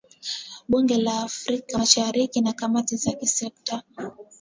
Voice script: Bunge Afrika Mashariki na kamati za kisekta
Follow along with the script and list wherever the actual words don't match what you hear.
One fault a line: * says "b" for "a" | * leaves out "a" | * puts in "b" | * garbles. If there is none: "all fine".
* puts in "la"